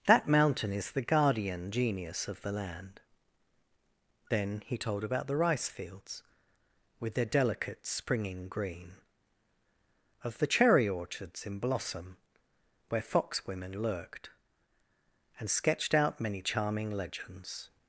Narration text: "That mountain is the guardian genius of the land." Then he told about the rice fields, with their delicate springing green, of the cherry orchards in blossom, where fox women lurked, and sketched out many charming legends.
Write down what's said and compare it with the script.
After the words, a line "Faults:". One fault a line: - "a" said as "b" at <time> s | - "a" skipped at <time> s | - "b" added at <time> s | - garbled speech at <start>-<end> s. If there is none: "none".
"That mountain is the guardian genius of the land." Then he told about the rice fields, with their delicate springing green, of the cherry orchards in blossom, where fox women lurked, and sketched out many charming legends.
Faults:
none